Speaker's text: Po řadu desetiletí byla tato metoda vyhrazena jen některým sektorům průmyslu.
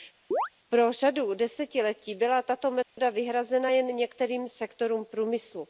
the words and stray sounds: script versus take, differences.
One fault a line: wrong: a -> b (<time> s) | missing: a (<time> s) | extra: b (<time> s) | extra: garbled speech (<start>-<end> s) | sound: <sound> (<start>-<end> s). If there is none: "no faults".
sound: chirp (0.3-0.5 s)
sound: dropout (2.8-3.0 s)